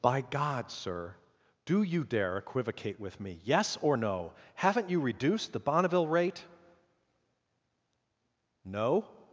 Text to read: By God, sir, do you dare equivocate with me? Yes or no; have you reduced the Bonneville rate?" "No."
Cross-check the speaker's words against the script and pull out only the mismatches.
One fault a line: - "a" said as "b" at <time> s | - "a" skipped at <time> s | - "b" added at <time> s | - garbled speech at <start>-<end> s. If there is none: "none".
- "have" said as "haven't" at 4.5 s